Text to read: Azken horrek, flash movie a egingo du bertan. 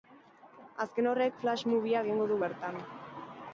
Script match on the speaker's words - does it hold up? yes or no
yes